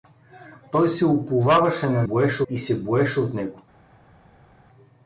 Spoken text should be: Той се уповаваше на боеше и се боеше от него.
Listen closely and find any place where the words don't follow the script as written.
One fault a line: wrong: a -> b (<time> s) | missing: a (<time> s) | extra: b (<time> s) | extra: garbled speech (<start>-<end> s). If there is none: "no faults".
no faults